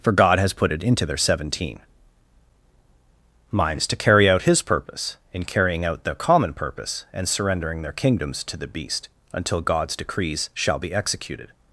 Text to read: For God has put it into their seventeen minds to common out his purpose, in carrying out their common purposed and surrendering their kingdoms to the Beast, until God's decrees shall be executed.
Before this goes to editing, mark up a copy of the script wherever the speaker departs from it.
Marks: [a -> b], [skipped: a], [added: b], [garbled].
For God has put it into their seventeen minds to [common -> carry] out his purpose, in carrying out their common [purposed -> purpose] and surrendering their kingdoms to the Beast, until God's decrees shall be executed.